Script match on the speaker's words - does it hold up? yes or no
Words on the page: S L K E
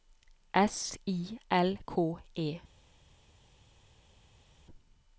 no